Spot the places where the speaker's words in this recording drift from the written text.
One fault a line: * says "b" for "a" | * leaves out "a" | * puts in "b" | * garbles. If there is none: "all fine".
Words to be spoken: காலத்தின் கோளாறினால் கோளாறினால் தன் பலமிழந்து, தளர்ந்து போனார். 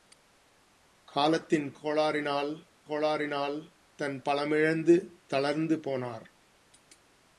all fine